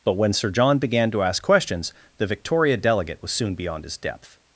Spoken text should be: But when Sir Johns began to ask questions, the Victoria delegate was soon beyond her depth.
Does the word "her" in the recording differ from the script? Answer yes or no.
yes